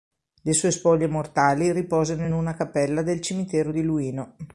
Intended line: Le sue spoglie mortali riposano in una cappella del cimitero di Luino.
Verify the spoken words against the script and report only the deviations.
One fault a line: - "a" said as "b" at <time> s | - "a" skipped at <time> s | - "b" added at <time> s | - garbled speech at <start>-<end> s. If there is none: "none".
none